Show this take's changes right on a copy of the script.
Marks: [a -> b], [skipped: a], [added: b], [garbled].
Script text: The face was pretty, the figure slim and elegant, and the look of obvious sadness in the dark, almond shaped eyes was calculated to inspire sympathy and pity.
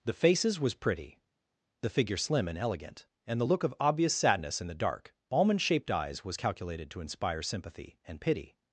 The [face -> faces] was pretty, the figure slim and elegant, and the look of obvious sadness in the dark, almond shaped eyes was calculated to inspire sympathy and pity.